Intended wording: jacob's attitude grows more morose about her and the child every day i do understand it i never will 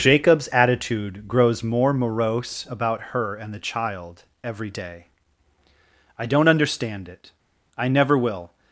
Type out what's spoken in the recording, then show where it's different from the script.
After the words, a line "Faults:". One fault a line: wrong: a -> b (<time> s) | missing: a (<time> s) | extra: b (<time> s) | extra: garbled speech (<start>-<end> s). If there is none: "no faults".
jacob's attitude grows more morose about her and the child every day i don't understand it i never will
Faults:
wrong: do -> don't (6.2 s)